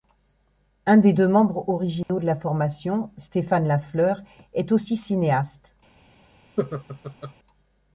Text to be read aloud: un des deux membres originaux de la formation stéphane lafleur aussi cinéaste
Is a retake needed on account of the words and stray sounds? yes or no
yes